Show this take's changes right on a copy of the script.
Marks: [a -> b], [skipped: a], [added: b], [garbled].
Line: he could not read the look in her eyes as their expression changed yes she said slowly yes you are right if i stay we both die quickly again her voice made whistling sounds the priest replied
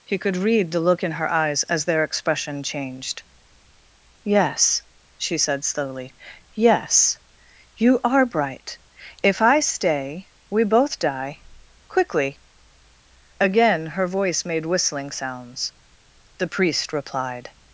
he could [skipped: not] read the look in her eyes as their expression changed yes she said slowly yes you are [right -> bright] if i stay we both die quickly again her voice made whistling sounds the priest replied